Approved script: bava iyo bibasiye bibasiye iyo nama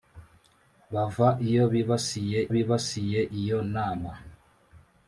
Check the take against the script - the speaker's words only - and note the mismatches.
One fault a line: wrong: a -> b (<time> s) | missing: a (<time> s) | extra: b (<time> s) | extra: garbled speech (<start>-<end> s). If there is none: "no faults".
no faults